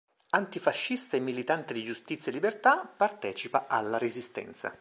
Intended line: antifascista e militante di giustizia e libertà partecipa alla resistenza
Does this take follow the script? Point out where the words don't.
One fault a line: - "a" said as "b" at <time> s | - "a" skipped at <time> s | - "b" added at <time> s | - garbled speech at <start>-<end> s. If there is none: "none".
none